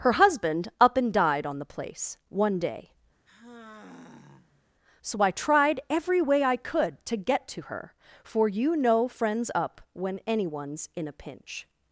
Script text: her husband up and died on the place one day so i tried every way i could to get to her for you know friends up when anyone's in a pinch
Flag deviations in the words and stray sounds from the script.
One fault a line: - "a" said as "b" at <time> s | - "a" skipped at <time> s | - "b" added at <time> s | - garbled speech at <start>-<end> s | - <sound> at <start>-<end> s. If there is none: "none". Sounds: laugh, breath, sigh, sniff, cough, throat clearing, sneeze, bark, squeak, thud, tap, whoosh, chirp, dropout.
- sigh at 3.3-4.6 s